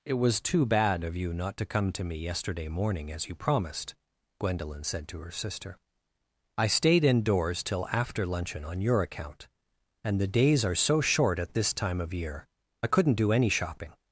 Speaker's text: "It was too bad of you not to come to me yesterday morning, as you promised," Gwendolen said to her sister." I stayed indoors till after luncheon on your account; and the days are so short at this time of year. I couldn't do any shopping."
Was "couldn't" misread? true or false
false